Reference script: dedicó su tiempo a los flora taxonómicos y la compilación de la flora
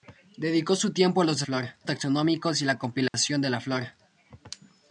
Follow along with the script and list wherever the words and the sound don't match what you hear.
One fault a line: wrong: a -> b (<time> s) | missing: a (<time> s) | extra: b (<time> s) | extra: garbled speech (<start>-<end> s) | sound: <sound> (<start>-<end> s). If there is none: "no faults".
sound: dropout (3.1-3.1 s)